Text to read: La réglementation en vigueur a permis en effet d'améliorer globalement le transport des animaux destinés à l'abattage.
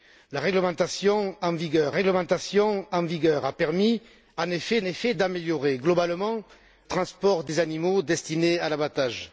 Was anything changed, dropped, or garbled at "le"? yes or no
yes